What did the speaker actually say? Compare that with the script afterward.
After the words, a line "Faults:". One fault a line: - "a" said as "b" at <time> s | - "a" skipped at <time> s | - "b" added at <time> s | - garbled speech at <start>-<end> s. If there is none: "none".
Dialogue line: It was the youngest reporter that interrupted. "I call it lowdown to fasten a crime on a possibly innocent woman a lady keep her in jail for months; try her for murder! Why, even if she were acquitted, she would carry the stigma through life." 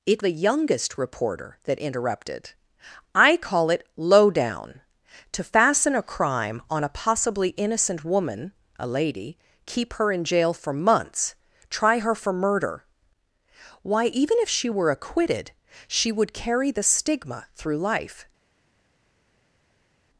It the youngest reporter that interrupted. "I call it lowdown to fasten a crime on a possibly innocent woman a lady keep her in jail for months; try her for murder! Why, even if she were acquitted, she would carry the stigma through life."
Faults:
- "was" skipped at 0.2 s